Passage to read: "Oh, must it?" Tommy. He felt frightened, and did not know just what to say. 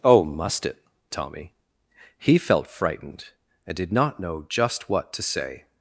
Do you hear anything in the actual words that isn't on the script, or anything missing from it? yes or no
no